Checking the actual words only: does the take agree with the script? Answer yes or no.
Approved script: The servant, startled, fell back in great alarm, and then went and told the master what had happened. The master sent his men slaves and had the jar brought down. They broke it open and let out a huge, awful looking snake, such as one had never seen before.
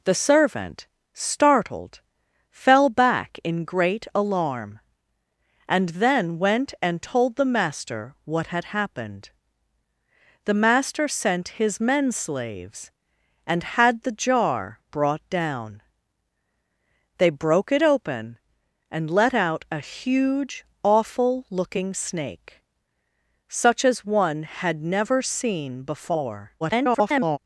no